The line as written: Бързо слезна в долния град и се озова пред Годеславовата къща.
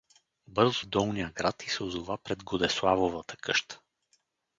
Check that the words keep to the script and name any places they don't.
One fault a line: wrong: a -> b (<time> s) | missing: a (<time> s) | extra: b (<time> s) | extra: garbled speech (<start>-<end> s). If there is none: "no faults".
missing: слезна (0.8 s)